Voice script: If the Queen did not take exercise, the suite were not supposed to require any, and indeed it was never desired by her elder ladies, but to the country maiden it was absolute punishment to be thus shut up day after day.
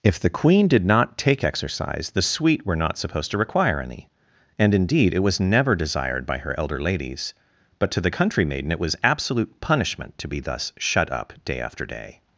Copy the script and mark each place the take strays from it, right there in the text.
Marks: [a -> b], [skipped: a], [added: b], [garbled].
If the Queen did not take exercise, the suite were not supposed to require any, and indeed it was never desired by her elder ladies, but to the country maiden it was absolute punishment to be thus shut up day after day.